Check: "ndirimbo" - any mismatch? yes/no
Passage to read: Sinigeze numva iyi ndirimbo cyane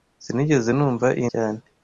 yes